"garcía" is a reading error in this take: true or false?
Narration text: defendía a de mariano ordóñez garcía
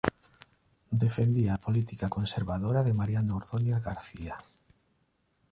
false